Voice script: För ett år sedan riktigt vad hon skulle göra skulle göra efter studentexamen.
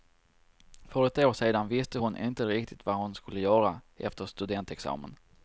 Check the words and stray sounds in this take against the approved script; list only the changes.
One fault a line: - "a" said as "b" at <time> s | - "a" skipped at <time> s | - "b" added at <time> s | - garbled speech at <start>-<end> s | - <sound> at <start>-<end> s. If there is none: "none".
- "visste hon inte" added at 1.7 s
- "skulle göra" skipped at 3.8 s